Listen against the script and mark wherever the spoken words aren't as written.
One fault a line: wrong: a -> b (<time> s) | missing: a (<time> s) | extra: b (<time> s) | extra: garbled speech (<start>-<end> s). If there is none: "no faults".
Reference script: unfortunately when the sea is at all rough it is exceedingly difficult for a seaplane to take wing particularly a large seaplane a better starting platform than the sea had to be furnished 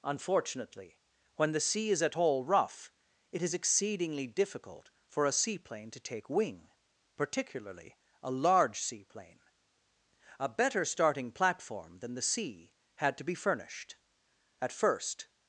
extra: at first (14.6 s)